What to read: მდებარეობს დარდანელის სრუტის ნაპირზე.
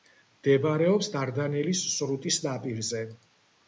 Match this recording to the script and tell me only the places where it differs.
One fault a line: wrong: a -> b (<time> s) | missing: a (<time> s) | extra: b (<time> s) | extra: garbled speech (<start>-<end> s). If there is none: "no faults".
no faults